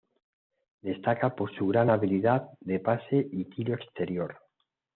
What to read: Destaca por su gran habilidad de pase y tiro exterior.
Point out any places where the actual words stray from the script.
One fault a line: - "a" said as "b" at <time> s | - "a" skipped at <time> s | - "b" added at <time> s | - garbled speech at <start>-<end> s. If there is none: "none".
none